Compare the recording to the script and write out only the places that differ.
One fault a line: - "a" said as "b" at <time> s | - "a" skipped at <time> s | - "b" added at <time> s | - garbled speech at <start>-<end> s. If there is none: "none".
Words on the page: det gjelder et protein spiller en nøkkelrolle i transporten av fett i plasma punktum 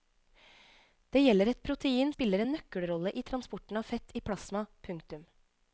none